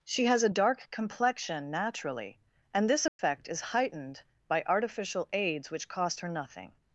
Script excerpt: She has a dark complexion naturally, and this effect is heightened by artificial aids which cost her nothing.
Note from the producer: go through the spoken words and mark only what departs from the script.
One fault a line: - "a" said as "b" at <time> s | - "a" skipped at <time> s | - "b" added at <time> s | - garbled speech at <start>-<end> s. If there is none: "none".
none